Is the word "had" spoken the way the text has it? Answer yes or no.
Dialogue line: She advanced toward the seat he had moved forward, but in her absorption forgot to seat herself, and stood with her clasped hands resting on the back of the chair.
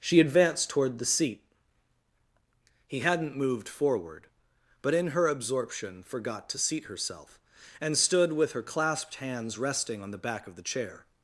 no